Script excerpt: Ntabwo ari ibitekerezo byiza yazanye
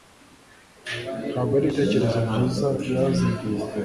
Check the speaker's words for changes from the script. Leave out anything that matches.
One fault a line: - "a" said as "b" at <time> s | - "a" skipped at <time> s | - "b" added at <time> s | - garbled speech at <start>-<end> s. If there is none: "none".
none